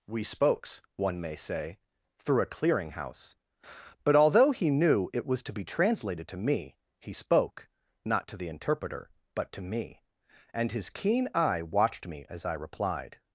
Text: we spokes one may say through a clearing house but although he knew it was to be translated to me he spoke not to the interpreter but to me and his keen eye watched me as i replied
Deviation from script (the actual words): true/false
false